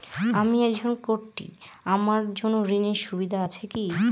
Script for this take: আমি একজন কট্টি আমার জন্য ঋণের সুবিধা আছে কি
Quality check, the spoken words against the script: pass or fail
pass